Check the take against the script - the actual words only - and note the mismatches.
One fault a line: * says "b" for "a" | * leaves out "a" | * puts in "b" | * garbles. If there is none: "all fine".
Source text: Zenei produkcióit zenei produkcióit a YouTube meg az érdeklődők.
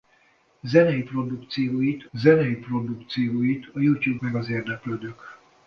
all fine